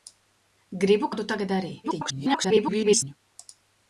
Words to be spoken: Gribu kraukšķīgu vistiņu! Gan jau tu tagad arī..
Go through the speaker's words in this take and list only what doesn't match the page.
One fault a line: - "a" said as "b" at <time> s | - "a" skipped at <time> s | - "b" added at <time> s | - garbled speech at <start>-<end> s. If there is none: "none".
- "kraukšķīgu vistiņu Gan" skipped at 1.1 s
- garbled speech at 1.8-3.1 s